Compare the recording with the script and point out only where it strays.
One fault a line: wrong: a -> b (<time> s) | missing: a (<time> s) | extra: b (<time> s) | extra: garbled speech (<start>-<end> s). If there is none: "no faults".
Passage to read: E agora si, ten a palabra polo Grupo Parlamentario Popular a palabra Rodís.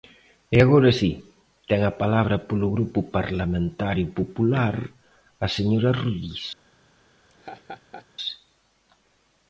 wrong: palabra -> señora (5.6 s)